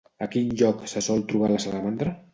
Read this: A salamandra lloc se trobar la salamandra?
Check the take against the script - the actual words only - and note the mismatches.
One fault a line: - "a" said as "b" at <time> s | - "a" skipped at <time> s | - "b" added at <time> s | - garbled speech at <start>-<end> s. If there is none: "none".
- "salamandra" said as "quin" at 0.3 s
- "sol" added at 1.1 s